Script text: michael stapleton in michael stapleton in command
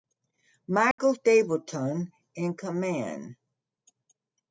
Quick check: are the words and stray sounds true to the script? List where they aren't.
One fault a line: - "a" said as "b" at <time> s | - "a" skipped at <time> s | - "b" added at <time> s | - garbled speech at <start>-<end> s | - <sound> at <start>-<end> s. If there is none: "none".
- dropout at 0.9-1.0 s
- "michael stapleton in" skipped at 2.5 s